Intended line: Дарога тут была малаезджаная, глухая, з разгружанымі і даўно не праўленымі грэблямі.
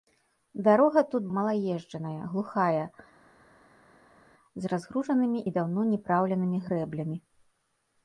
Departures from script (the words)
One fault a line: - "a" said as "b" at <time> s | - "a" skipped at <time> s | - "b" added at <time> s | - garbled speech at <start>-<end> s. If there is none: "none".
- "была" skipped at 1.3 s